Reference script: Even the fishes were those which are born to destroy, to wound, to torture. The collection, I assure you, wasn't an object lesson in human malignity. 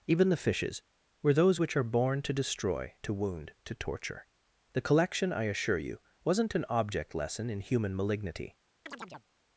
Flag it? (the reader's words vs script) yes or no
no